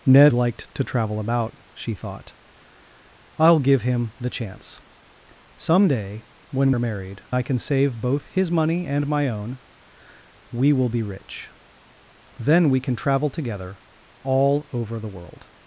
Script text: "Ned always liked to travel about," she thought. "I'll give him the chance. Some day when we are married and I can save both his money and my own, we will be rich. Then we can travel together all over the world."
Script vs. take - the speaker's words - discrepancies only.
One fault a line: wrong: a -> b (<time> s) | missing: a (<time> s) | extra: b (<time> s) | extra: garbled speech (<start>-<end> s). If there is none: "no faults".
missing: always (0.3 s)
missing: we (6.7 s)
missing: and (7.2 s)